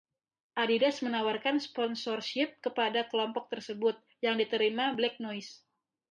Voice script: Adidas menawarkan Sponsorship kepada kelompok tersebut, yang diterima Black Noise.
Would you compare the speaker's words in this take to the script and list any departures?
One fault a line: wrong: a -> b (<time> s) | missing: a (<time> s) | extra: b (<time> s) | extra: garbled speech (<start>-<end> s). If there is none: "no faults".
no faults